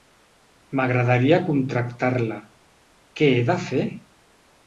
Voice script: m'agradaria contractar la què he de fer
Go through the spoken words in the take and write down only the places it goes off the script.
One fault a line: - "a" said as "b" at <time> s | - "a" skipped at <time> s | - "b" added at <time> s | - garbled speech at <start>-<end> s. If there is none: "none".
none